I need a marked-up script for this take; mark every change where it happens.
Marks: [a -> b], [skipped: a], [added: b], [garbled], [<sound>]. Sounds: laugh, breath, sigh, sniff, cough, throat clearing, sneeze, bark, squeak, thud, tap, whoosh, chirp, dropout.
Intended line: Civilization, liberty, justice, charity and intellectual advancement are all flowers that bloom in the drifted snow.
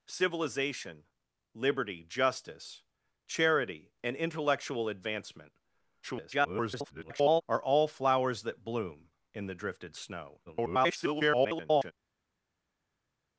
Civilization, liberty, justice, charity and intellectual advancement [garbled] are all flowers that bloom in the drifted snow. [garbled]